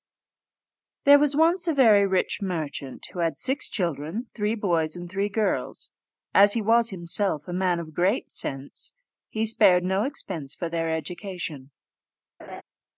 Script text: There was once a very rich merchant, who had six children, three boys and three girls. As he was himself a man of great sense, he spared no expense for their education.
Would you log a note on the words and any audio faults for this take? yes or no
yes